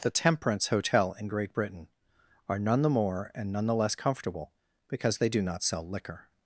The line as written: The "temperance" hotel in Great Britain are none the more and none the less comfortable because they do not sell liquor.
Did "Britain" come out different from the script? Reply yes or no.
no